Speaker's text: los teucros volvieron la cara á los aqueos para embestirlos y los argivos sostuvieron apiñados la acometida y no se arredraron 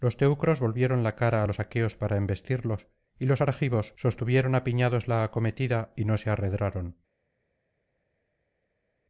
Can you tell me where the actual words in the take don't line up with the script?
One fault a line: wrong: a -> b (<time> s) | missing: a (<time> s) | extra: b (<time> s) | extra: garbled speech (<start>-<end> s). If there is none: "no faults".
no faults